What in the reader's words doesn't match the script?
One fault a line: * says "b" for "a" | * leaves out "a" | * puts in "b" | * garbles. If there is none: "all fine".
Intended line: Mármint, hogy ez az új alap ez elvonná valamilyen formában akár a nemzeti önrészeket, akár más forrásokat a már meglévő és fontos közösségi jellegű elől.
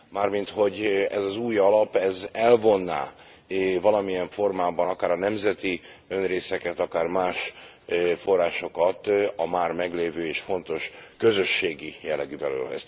all fine